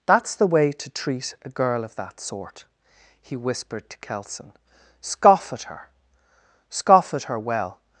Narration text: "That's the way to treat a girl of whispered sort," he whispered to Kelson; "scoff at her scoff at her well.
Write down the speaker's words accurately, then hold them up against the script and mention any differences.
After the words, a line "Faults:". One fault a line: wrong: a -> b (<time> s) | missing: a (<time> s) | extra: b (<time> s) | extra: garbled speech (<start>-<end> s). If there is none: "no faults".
"That's the way to treat a girl of that sort," he whispered to Kelson; "scoff at her scoff at her well.
Faults:
wrong: whispered -> that (1.9 s)